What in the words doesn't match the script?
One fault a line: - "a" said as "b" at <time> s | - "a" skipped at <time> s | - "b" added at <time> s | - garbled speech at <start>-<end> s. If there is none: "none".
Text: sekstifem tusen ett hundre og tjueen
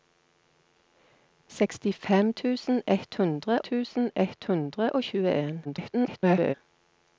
- "tusen ett hundre" added at 3.7 s
- garbled speech at 5.6-6.5 s